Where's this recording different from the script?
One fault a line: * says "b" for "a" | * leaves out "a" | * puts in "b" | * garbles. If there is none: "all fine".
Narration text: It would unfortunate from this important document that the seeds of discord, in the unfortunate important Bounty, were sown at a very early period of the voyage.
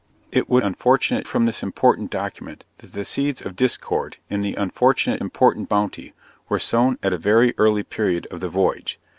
all fine